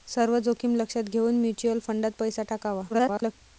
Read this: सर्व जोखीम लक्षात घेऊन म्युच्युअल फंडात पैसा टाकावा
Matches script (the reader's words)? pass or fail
fail